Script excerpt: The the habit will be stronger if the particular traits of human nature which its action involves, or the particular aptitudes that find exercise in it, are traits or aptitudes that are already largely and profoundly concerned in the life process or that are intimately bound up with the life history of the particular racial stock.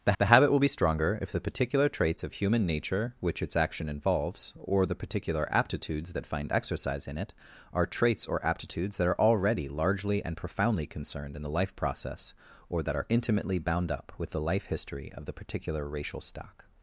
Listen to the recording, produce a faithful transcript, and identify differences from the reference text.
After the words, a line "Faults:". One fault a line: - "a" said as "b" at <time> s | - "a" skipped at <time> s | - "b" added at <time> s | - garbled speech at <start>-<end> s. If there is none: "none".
The the habit will be stronger if the particular traits of human nature which its action involves, or the particular aptitudes that find exercise in it, are traits or aptitudes that are already largely and profoundly concerned in the life process or that are intimately bound up with the life history of the particular racial stock.
Faults:
none